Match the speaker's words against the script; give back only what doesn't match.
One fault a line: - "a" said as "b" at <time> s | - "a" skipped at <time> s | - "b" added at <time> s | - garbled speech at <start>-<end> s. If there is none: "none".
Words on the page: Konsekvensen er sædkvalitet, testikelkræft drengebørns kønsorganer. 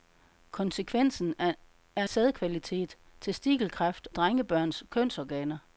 none